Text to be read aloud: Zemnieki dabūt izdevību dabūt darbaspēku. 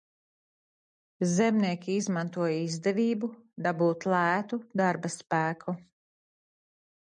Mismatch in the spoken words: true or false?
true